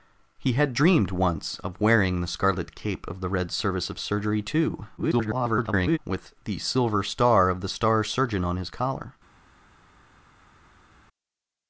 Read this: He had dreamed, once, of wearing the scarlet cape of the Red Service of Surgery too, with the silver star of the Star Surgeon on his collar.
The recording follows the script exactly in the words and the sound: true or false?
false